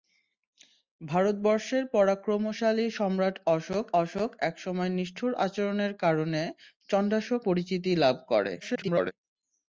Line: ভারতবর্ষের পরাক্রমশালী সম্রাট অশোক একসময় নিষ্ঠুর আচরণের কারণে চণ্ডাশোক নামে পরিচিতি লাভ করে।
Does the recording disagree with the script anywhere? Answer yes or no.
yes